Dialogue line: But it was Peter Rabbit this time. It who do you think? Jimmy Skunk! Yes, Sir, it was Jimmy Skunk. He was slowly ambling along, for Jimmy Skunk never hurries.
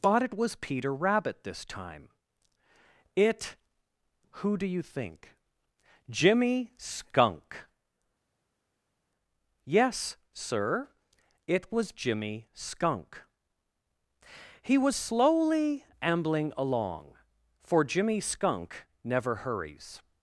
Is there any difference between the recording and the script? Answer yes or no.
no